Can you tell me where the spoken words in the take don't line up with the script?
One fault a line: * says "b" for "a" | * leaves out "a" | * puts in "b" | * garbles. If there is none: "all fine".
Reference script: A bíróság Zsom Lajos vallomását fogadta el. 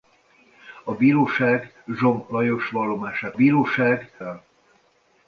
* says "bíróság" for "fogadta"